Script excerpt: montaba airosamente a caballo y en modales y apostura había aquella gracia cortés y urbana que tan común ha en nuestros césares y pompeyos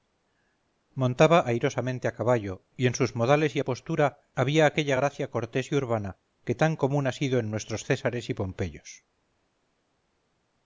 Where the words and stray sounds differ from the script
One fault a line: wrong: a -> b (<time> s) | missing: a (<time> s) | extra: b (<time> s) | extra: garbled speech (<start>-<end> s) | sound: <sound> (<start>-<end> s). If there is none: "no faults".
extra: sus (3.0 s)
extra: sido (7.1 s)